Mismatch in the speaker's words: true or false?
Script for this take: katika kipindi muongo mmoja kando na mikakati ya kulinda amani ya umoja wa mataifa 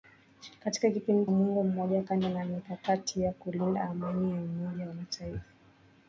false